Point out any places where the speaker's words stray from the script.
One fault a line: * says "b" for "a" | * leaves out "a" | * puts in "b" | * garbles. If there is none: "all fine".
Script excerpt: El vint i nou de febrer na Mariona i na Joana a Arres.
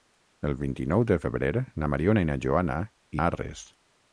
all fine